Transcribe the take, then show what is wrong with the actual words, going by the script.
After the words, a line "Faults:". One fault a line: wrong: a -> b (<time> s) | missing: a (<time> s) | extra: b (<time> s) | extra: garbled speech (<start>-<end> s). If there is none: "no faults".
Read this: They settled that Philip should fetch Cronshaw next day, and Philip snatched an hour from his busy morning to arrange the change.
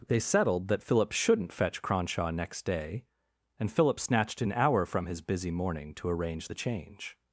They settled that Philip shouldn't fetch Cronshaw next day, and Philip snatched an hour from his busy morning to arrange the change.
Faults:
wrong: should -> shouldn't (1.1 s)